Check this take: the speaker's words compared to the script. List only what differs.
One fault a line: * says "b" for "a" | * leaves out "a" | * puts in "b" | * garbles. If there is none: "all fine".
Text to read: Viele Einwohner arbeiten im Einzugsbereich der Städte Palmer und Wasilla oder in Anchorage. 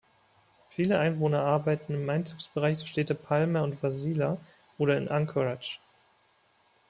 all fine